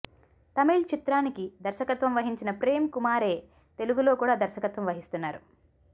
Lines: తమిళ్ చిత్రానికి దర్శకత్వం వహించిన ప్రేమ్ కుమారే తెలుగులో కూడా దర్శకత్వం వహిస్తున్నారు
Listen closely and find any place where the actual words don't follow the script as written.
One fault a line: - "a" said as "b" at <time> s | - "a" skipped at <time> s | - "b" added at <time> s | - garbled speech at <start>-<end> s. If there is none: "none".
none